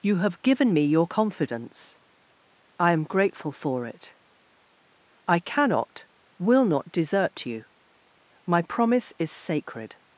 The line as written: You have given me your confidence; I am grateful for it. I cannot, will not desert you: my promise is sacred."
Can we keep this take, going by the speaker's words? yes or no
yes